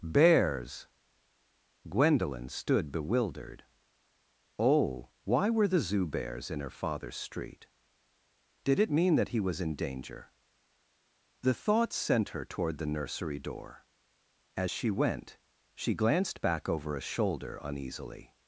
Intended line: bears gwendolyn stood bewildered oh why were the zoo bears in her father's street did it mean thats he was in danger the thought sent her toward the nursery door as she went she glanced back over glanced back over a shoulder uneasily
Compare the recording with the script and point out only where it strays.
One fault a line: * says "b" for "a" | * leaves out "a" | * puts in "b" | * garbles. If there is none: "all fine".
* says "that" for "thats"
* leaves out "glanced back over"